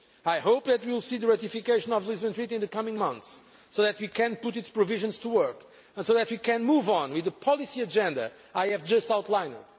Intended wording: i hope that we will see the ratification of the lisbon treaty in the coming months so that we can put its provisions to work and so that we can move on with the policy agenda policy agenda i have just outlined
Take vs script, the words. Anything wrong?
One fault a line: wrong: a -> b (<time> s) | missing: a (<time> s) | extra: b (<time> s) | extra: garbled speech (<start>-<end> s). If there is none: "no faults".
missing: policy agenda (8.3 s)